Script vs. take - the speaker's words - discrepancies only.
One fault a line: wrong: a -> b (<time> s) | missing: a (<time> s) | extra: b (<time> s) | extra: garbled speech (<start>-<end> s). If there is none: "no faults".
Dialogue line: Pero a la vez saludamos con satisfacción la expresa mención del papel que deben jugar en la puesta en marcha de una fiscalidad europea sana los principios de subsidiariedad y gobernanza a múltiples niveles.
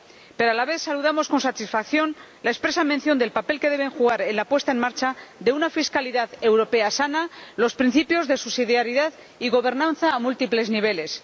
no faults